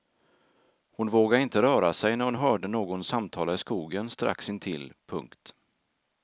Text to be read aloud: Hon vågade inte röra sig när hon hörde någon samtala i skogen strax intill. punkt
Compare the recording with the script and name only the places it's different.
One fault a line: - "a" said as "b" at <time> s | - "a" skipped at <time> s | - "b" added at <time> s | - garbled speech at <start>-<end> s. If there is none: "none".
none